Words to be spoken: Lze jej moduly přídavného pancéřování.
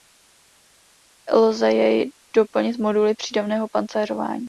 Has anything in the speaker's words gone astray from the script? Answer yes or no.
yes